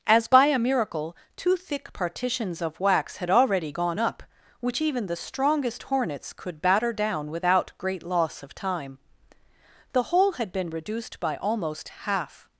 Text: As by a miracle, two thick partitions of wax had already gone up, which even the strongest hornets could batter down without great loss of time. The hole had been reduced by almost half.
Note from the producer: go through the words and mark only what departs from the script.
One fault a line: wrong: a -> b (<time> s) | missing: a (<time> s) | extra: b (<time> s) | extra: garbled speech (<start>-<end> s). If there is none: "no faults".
no faults